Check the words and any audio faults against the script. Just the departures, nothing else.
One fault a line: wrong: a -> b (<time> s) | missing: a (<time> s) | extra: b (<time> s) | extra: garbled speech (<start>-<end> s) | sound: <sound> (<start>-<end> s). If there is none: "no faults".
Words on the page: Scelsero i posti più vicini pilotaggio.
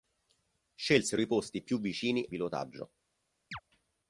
sound: chirp (3.5-3.6 s)